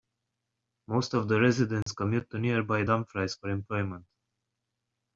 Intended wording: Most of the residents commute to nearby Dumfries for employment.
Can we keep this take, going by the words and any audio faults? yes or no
no